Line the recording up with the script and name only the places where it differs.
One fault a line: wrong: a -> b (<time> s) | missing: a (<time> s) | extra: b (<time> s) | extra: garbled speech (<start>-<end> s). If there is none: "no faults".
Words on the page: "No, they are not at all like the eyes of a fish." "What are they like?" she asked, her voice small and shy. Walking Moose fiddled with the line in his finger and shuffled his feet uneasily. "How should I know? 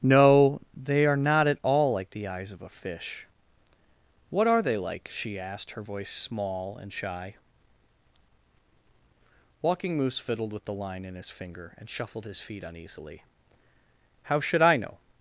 no faults